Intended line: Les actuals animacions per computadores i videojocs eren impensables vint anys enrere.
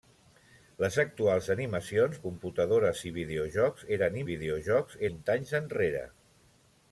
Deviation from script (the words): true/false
true